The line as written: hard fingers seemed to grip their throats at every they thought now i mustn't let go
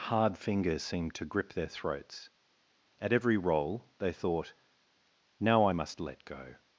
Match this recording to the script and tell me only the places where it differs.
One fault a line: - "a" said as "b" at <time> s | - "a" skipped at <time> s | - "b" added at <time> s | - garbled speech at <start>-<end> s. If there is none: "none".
- "roll" added at 3.4 s
- "mustn't" said as "must" at 5.7 s